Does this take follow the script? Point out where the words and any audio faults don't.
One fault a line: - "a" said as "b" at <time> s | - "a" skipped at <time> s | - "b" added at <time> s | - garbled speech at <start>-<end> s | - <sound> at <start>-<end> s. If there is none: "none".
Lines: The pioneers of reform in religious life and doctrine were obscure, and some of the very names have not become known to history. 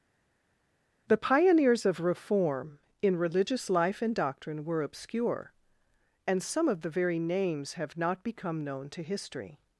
none